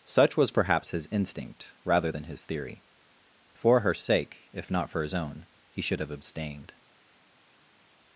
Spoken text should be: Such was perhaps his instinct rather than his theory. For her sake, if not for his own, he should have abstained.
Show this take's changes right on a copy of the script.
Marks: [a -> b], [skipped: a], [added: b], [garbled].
Such was perhaps his instinct rather than his theory. For her sake, if not for his own, he should have abstained.